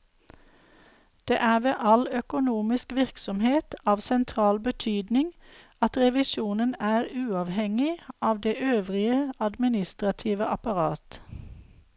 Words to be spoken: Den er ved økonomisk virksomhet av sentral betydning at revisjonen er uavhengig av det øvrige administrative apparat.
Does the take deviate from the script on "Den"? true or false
true